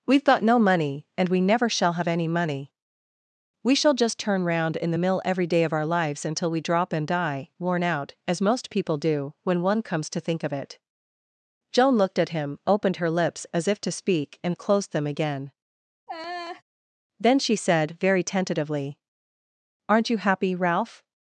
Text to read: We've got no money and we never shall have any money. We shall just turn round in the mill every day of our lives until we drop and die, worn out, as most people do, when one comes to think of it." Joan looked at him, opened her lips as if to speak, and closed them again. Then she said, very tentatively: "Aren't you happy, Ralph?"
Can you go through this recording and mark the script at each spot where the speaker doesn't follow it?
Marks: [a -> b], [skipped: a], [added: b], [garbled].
We've got no money and we never shall have any money. We shall just turn round in the mill every day of our lives until we drop and die, worn out, as most people do, when one comes to think of it." Joan looked at him, opened her lips as if to speak, and closed them again. Then she said, very tentatively: "Aren't you happy, Ralph?"